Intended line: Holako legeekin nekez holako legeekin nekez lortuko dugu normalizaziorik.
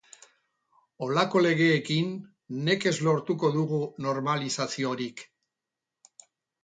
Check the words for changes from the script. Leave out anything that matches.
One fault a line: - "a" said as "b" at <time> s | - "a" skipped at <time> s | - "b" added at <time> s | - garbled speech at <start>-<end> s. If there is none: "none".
- "holako legeekin nekez" skipped at 3.0 s